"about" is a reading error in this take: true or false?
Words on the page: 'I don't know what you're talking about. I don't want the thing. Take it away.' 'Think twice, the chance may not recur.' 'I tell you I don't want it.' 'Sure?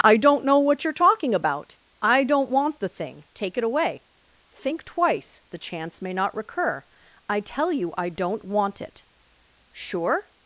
false